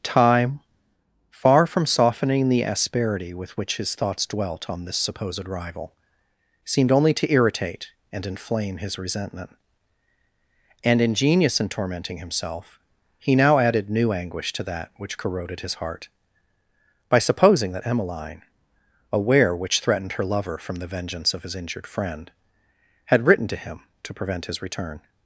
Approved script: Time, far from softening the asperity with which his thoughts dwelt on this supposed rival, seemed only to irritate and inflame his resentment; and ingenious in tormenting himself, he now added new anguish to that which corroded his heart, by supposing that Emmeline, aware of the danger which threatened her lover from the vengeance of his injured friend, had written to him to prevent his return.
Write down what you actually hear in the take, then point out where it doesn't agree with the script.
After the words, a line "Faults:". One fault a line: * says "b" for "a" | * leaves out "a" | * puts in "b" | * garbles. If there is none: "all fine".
Time, far from softening the asperity with which his thoughts dwelt on this supposed rival, seemed only to irritate and inflame his resentment; and ingenious in tormenting himself, he now added new anguish to that which corroded his heart, by supposing that Emmeline, aware which threatened her lover from the vengeance of his injured friend, had written to him to prevent his return.
Faults:
* leaves out "of the danger"